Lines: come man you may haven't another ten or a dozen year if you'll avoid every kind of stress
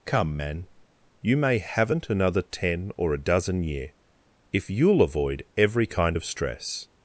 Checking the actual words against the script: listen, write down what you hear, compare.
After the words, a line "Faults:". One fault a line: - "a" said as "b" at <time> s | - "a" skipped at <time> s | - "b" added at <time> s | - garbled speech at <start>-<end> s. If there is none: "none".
come man you may haven't another ten or a dozen year if you'll avoid every kind of stress
Faults:
none